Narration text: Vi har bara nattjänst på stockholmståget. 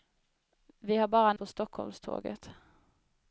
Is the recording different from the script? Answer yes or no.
yes